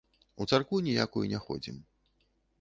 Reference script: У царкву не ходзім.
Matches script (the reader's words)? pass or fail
fail